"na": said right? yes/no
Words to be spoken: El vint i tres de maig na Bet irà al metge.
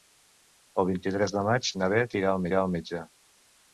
yes